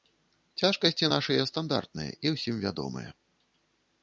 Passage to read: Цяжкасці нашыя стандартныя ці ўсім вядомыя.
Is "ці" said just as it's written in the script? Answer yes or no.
no